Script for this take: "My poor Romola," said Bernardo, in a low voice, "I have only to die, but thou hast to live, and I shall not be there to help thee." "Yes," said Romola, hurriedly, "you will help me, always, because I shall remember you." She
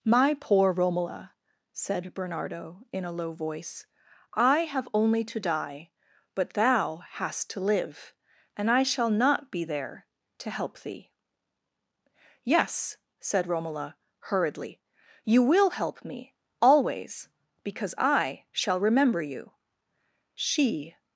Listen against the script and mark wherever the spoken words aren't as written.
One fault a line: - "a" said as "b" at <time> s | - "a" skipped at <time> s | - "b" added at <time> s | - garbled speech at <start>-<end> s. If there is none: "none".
none